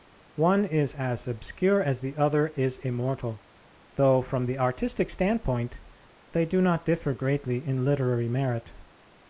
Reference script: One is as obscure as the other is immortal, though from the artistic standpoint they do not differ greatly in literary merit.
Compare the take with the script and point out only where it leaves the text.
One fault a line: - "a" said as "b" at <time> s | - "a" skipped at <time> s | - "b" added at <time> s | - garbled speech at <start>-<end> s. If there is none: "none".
none